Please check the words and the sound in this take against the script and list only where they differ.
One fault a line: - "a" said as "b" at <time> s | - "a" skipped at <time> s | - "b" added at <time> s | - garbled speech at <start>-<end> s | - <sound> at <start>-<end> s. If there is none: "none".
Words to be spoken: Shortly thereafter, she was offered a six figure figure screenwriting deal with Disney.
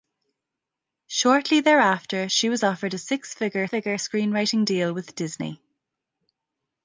none